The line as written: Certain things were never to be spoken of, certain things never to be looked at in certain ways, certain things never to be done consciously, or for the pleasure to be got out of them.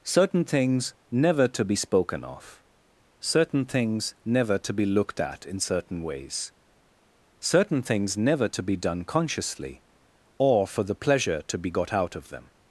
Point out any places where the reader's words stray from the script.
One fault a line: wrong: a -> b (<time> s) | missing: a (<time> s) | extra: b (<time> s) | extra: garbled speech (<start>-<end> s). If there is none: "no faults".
missing: were (0.9 s)